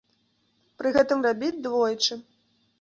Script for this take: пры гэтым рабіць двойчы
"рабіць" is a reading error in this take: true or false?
false